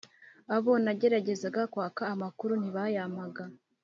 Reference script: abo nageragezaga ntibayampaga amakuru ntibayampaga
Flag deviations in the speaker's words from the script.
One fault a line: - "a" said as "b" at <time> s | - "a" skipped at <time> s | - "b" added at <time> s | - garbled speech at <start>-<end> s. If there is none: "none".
- "ntibayampaga" said as "kwaka" at 1.7 s